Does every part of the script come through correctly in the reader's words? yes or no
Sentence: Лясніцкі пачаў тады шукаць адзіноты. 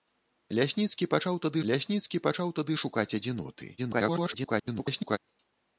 no